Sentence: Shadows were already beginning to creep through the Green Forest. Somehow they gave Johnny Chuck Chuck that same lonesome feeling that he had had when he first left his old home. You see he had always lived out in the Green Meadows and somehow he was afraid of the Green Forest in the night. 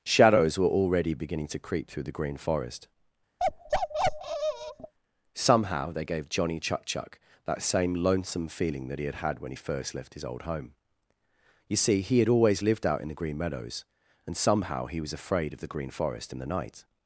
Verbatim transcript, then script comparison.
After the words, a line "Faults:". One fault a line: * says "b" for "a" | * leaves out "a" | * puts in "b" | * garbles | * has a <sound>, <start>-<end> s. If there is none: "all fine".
Shadows were already beginning to creep through the Green Forest. Somehow they gave Johnny Chuck Chuck that same lonesome feeling that he had had when he first left his old home. You see he had always lived out in the Green Meadows and somehow he was afraid of the Green Forest in the night.
Faults:
* has a bark, 3.4-4.9 s